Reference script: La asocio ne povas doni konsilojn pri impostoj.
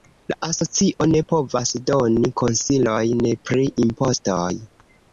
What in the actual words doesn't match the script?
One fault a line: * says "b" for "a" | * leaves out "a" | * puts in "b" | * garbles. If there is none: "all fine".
all fine